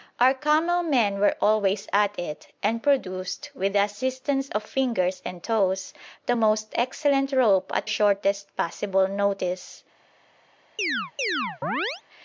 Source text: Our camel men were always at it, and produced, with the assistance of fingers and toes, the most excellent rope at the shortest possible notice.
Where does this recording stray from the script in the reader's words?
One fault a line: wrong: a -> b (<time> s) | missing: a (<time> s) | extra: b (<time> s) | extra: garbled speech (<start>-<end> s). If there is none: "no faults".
missing: the (7.9 s)